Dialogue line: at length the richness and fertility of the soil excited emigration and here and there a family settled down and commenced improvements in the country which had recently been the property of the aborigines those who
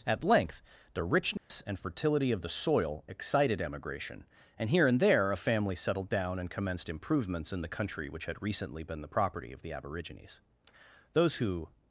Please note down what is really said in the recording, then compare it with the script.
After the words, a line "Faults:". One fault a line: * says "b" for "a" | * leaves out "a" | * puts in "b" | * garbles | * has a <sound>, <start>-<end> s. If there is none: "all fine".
at length the richness and fertility of the soil excited emigration and here and there a family settled down and commenced improvements in the country which had recently been the property of the aborigines those who
Faults:
* has a dropout, 1.4-1.5 s